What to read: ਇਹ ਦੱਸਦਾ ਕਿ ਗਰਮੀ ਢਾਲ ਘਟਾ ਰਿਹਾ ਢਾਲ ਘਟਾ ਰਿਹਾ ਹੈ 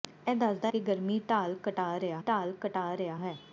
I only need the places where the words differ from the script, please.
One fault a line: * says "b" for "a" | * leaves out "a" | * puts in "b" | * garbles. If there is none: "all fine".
all fine